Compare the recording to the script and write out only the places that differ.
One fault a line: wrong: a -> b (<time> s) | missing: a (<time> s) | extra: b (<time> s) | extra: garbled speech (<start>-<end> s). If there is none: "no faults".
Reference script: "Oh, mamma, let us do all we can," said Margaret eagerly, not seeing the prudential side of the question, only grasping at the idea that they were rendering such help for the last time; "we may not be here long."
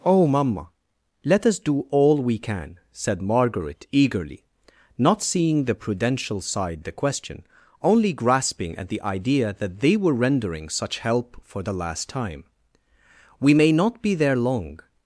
missing: of (6.8 s)
wrong: here -> there (14.2 s)